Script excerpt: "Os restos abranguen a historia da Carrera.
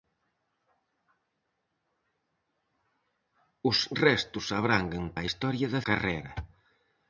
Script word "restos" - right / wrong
right